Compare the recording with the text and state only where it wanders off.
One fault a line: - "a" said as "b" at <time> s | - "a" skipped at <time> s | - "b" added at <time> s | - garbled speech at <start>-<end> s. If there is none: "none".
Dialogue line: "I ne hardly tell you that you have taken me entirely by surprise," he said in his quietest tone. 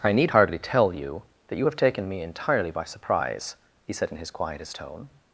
- "ne" said as "need" at 0.1 s